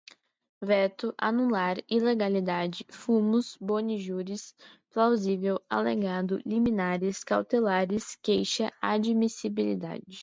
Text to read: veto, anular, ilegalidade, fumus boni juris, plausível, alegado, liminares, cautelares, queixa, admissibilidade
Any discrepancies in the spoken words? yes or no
no